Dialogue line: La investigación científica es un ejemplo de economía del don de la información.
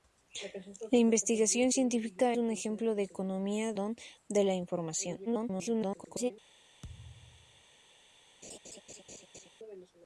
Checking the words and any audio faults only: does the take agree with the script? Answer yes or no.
no